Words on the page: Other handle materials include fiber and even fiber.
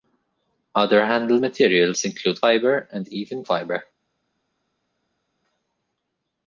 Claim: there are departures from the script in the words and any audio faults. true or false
false